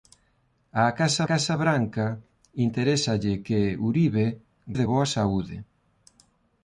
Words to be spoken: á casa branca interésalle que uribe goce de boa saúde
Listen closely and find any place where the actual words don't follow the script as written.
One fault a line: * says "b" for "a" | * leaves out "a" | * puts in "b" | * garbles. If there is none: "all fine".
* puts in "casa"
* leaves out "goce"